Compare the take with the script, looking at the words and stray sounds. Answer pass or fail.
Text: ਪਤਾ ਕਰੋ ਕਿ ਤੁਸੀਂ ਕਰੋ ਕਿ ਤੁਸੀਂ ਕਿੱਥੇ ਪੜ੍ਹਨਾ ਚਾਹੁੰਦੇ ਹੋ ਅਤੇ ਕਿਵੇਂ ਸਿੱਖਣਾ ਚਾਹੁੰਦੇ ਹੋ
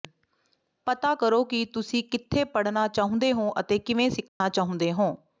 fail